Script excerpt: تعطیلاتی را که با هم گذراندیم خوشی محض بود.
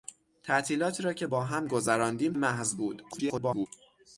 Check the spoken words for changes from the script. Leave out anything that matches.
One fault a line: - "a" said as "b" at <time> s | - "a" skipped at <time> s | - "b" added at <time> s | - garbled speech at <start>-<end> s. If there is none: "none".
- "خوشی" skipped at 2.3 s
- garbled speech at 3.1-3.7 s